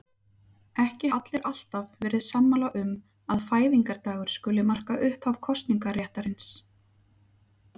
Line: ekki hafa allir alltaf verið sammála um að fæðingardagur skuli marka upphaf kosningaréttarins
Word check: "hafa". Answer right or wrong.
wrong